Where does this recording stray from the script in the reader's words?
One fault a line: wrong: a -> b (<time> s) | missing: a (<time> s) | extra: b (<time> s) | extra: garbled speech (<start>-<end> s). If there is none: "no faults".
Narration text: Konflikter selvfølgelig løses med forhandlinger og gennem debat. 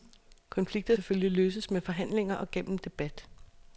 no faults